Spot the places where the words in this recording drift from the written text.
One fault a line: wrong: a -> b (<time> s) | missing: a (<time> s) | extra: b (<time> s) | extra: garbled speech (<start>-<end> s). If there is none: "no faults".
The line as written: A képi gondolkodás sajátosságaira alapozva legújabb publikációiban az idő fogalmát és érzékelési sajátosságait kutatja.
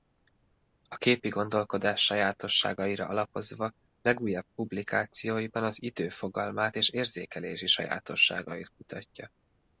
no faults